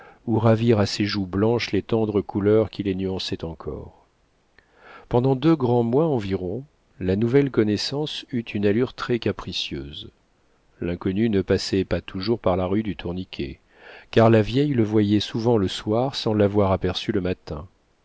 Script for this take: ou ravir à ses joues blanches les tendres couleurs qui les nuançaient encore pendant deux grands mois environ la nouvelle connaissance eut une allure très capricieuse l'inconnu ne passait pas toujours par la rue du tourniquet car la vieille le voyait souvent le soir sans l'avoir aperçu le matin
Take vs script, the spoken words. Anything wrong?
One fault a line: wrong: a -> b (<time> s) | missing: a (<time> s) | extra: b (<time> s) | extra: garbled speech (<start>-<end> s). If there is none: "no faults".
no faults